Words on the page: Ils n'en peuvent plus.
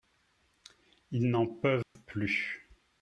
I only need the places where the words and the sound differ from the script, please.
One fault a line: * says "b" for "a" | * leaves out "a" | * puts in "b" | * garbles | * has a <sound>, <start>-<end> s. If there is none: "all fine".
* has a dropout, 1.8-2.0 s